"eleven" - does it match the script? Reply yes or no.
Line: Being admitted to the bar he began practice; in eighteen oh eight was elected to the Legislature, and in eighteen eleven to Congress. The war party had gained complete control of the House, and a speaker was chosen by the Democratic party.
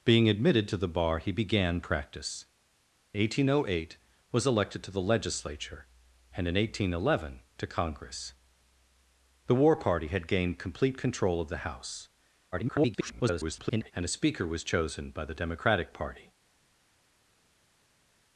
yes